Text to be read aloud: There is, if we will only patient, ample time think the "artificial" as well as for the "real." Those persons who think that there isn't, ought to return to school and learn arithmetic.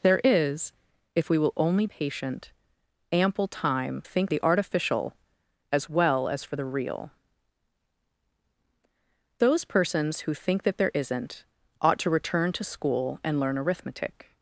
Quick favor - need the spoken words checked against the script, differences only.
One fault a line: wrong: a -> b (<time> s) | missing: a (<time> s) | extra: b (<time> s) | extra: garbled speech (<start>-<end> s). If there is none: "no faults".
no faults